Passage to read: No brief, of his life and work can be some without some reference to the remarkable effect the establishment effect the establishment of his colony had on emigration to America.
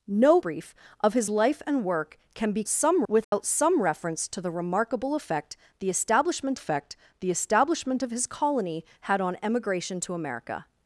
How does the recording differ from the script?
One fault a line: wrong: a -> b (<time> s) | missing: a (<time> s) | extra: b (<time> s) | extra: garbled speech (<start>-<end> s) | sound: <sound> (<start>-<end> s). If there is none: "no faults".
sound: dropout (3.2-3.3 s)